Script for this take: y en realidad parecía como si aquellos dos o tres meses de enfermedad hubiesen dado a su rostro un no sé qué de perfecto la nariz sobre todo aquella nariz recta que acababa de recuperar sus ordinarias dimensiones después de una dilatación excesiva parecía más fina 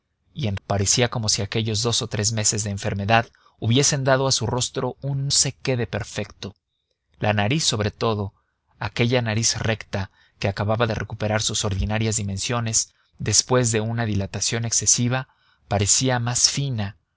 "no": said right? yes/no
no